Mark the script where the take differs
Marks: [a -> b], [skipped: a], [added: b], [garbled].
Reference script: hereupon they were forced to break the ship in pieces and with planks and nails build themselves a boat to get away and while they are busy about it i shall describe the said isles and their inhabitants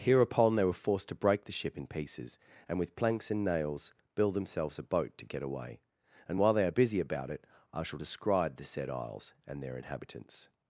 hereupon they were forced to break the ship in pieces and with planks and nails build themselves a boat to get away and while they are busy about it i shall describe the said isles and their inhabitants